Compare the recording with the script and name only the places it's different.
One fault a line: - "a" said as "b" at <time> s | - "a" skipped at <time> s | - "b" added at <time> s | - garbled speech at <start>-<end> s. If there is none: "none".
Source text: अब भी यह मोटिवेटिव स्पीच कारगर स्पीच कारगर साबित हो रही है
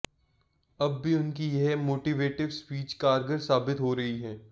- "उनकी" added at 1.1 s
- "स्पीच कारगर" skipped at 3.4 s